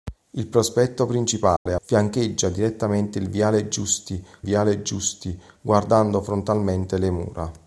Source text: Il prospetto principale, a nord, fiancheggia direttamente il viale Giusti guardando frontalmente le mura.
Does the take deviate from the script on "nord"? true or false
true